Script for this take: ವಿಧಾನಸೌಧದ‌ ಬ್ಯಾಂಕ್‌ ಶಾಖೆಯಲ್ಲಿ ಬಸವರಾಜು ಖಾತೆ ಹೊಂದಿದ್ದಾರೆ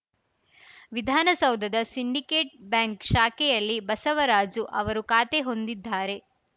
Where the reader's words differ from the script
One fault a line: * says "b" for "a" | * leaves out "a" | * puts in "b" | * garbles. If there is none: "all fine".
* puts in "ಸಿಂಡಿಕೇಟ್"
* puts in "ಅವರು"